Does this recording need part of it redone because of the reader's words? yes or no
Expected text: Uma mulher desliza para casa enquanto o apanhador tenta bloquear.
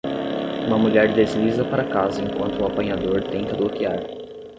no